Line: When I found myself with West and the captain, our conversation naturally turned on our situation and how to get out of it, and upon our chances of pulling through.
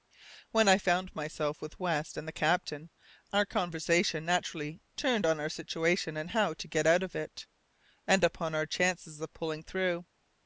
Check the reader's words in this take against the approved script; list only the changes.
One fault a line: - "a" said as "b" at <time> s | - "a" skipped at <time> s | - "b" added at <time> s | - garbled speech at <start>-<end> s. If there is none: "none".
none